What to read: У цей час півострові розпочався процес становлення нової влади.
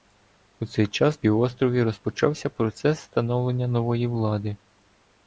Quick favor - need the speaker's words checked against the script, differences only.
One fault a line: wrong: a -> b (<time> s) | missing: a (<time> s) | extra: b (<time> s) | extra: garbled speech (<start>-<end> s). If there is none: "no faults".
no faults